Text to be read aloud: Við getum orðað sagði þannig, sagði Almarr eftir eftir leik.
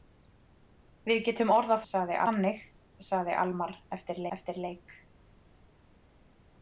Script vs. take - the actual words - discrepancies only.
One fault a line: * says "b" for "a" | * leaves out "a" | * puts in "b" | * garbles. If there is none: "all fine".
all fine